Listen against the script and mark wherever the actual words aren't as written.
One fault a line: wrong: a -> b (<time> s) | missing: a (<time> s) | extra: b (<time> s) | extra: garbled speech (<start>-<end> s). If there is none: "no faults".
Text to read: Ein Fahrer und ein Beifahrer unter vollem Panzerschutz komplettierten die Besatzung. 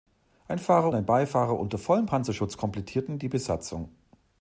missing: und (0.9 s)